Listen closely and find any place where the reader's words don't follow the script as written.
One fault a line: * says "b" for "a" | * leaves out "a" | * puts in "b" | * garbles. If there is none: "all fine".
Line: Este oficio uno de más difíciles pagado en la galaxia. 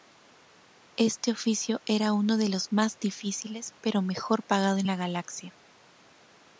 * puts in "era"
* puts in "los"
* puts in "pero mejor"